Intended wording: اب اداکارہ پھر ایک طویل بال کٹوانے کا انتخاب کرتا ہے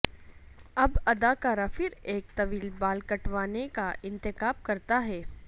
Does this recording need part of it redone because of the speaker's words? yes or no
no